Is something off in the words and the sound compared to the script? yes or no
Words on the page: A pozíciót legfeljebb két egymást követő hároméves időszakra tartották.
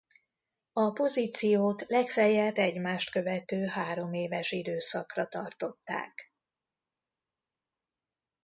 yes